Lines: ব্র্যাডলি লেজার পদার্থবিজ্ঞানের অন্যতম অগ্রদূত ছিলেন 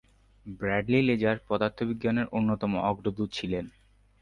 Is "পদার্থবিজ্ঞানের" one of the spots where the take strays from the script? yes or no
no